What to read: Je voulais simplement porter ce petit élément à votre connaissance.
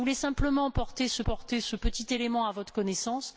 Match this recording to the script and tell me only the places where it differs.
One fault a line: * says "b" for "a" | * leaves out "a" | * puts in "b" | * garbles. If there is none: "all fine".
* puts in "porter ce"